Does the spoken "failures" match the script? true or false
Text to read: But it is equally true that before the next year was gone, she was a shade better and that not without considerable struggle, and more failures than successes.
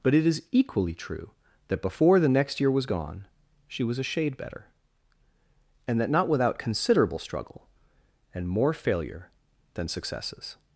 false